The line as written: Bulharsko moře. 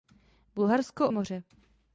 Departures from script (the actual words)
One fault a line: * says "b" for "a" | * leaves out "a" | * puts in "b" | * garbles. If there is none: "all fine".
all fine